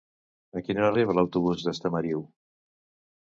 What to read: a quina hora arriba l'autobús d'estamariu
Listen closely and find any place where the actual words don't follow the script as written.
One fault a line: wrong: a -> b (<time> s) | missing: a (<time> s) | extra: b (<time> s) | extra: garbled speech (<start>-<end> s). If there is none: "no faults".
no faults